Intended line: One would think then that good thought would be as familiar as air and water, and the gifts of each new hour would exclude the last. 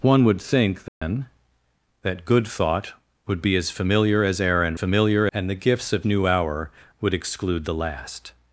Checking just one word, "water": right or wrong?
wrong